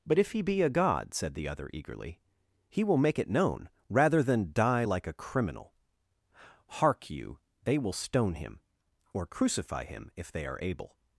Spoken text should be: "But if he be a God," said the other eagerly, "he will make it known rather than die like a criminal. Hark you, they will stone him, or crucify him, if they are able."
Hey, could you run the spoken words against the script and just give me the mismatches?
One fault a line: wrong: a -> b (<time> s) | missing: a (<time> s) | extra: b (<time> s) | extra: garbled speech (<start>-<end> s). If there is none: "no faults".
no faults